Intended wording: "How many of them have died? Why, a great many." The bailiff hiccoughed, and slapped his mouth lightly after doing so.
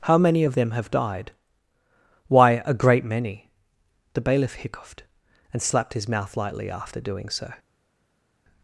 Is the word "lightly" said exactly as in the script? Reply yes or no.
yes